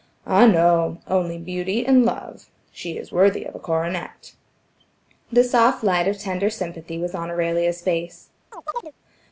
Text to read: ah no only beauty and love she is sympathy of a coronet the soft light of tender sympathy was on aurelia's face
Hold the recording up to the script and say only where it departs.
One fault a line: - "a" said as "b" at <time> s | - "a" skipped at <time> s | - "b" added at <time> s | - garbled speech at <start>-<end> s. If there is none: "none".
- "sympathy" said as "worthy" at 3.1 s